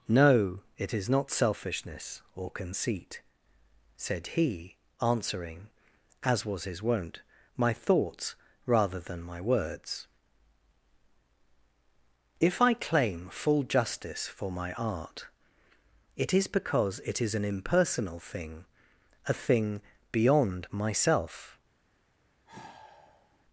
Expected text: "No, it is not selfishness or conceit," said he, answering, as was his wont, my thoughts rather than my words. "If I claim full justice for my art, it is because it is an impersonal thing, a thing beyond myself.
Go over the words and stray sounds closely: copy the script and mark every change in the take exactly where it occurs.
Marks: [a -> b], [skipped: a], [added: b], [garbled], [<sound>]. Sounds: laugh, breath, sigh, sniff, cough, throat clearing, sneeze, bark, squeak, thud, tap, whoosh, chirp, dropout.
"No, it is not selfishness or conceit," said he, answering, as was his wont, my thoughts rather than my words. "If I claim full justice for my art, it is because it is an impersonal thing, a thing beyond myself. [sigh]